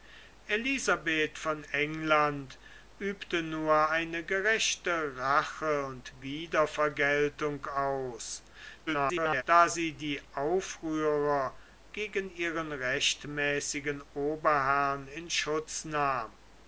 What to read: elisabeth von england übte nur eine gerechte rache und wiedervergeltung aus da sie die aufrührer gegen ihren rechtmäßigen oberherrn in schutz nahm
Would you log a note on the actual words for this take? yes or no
yes